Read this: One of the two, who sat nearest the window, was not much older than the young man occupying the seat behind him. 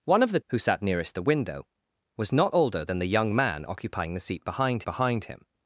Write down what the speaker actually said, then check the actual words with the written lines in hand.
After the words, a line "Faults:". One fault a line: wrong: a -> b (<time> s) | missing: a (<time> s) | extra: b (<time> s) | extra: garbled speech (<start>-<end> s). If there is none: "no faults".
One of the who sat nearest the window, was not older than the young man occupying the seat behind behind him.
Faults:
missing: two (0.4 s)
missing: much (2.5 s)
extra: behind (4.8 s)